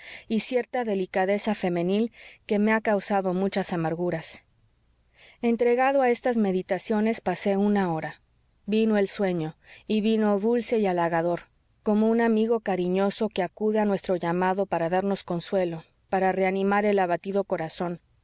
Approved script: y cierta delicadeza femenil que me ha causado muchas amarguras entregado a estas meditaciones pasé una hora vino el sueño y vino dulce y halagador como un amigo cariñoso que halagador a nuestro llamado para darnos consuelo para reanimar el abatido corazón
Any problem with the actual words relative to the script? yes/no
yes